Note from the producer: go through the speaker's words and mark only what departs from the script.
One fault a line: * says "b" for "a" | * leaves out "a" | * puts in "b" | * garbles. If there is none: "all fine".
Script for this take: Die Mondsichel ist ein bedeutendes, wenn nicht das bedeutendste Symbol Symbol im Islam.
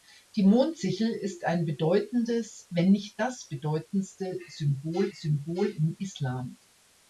all fine